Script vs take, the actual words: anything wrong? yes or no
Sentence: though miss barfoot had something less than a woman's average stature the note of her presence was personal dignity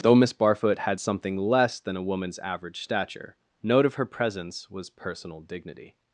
yes